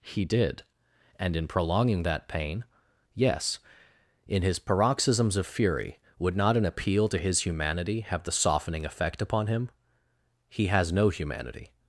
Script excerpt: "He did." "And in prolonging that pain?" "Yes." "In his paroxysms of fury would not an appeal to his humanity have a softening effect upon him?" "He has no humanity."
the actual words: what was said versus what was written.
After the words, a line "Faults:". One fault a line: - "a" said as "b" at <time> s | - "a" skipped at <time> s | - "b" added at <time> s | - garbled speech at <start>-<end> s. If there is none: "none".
"He did." "And in prolonging that pain?" "Yes." "In his paroxysms of fury would not an appeal to his humanity have the softening effect upon him?" "He has no humanity."
Faults:
- "a" said as "the" at 8.2 s